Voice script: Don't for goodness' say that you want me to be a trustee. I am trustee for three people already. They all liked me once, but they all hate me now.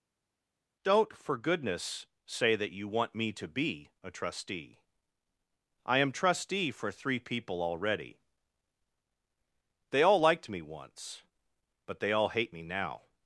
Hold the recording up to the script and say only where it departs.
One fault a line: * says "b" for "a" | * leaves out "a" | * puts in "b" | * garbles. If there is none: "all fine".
all fine